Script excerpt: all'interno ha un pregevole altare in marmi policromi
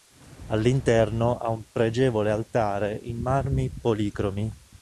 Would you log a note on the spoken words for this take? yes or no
no